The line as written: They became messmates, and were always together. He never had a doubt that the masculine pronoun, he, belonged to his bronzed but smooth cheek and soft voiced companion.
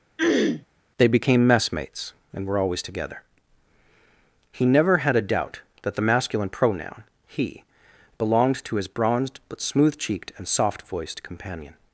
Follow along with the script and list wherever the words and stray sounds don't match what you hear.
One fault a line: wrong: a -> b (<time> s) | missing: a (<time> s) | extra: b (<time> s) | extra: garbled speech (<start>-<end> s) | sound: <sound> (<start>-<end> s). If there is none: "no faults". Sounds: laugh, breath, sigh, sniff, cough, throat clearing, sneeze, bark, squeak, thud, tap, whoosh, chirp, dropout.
sound: throat clearing (0.2-0.7 s)
wrong: cheek -> cheeked (10.0 s)